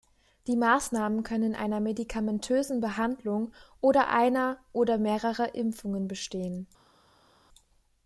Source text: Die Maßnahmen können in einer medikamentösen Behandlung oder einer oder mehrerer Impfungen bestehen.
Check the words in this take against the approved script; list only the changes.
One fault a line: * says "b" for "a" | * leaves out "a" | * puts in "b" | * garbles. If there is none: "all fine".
all fine